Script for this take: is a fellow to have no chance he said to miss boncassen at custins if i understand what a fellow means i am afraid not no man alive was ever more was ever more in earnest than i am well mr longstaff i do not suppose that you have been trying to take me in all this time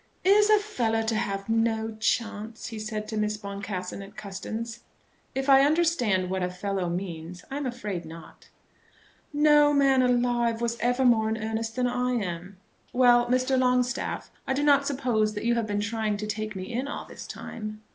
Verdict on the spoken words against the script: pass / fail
fail